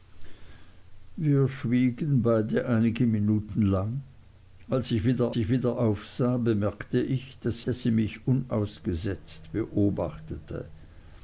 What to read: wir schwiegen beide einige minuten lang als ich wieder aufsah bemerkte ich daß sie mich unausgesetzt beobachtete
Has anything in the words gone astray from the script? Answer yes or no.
yes